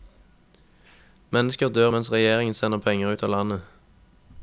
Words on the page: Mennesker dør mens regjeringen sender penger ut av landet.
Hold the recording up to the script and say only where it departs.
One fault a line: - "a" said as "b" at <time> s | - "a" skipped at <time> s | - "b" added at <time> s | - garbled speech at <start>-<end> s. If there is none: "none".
none